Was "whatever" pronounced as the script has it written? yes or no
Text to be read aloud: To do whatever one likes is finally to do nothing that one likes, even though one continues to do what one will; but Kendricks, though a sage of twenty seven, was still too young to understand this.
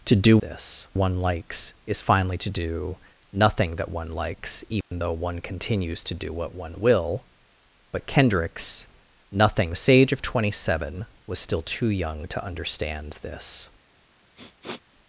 no